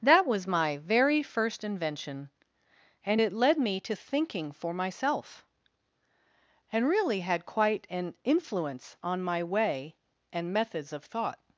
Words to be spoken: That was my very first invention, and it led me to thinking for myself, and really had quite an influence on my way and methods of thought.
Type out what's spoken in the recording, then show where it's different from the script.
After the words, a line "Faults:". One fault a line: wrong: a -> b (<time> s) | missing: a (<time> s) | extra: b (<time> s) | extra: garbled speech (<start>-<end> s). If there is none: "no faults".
That was my very first invention, and it led me to thinking for myself, and really had quite an influence on my way and methods of thought.
Faults:
no faults